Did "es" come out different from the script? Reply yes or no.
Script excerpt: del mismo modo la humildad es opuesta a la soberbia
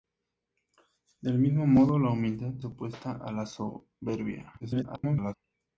yes